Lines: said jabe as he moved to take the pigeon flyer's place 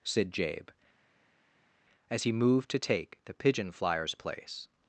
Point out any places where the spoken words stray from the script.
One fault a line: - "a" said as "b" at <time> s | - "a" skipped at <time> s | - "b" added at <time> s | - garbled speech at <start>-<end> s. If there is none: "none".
none